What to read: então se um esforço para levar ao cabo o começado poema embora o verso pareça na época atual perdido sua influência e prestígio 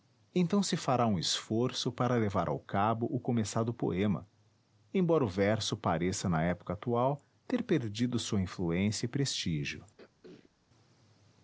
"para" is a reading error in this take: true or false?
false